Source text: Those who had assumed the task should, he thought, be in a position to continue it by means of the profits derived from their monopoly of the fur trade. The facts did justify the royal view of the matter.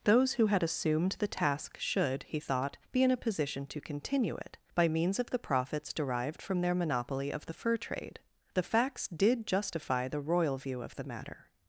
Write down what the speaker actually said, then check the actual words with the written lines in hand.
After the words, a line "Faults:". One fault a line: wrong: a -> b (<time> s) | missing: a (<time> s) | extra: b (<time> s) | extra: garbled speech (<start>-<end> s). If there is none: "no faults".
Those who had assumed the task should, he thought, be in a position to continue it by means of the profits derived from their monopoly of the fur trade. The facts did justify the royal view of the matter.
Faults:
no faults